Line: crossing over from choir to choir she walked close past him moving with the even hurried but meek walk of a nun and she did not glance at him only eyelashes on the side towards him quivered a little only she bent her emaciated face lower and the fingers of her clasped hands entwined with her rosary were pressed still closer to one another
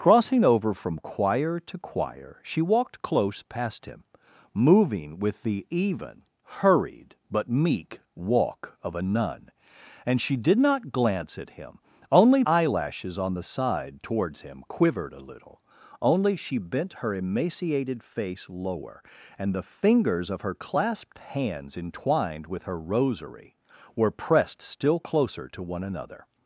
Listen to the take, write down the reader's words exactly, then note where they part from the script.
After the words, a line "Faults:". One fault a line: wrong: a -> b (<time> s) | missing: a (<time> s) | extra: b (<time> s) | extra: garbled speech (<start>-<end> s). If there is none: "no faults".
crossing over from choir to choir she walked close past him moving with the even hurried but meek walk of a nun and she did not glance at him only eyelashes on the side towards him quivered a little only she bent her emaciated face lower and the fingers of her clasped hands entwined with her rosary were pressed still closer to one another
Faults:
no faults